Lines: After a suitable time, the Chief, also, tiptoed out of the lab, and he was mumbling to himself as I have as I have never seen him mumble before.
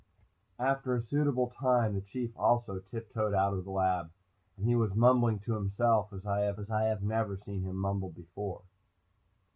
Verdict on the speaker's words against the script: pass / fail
pass